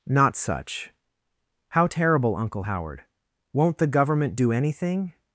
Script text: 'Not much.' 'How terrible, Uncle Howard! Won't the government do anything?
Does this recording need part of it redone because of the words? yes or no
yes